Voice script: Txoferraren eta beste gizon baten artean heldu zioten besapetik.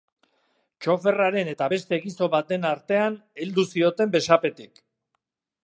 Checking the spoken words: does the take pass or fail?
pass